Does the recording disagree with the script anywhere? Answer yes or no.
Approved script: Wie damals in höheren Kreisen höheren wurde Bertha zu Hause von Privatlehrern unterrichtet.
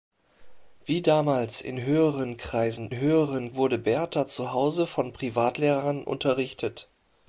no